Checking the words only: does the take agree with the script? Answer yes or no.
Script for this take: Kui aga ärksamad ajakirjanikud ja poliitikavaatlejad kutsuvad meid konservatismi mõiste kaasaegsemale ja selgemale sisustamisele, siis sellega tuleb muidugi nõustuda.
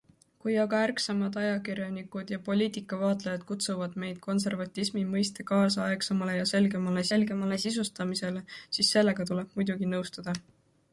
no